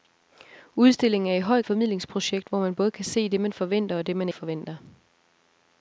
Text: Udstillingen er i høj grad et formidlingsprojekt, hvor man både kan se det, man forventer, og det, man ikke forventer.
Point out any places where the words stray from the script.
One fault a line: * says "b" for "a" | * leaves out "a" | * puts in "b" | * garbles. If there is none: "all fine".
* leaves out "grad"
* leaves out "ikke"